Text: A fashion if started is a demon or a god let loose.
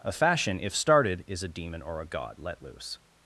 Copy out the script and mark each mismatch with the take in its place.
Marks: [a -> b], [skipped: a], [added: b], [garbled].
A fashion if started is a demon or a god let loose.